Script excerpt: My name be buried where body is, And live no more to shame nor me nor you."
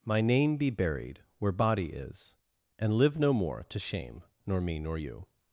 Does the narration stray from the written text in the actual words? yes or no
no